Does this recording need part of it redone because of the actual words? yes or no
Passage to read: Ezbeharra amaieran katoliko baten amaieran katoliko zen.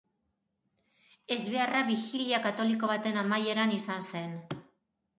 yes